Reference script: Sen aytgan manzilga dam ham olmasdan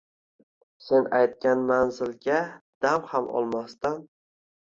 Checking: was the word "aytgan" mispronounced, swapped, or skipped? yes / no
no